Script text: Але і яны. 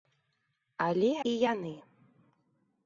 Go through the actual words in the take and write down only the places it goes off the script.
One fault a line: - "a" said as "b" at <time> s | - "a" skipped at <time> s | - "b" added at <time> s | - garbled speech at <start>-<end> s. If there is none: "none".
none